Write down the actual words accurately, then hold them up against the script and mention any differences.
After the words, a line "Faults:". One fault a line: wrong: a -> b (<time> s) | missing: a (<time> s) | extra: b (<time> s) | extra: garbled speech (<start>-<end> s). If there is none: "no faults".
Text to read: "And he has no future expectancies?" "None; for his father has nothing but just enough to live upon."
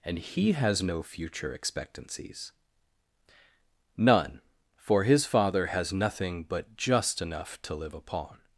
"And he has no future expectancies?" "None; for his father has nothing but just enough to live upon."
Faults:
no faults